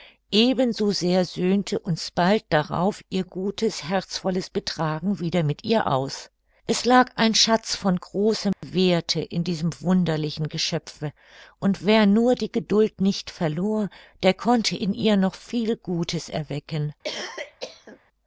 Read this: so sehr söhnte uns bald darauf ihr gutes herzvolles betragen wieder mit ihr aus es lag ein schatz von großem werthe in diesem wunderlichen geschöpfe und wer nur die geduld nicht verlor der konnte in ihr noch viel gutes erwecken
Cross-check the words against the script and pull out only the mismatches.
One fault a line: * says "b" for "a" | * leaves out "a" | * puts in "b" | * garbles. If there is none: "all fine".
all fine